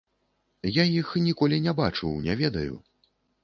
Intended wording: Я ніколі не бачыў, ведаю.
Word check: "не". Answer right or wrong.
right